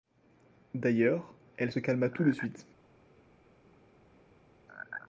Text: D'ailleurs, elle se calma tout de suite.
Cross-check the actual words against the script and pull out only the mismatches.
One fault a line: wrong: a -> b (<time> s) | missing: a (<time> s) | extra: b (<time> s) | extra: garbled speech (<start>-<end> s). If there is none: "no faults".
no faults